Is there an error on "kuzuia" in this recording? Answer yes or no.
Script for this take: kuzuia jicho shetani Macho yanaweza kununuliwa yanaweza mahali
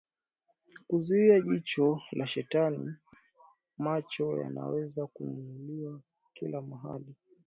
no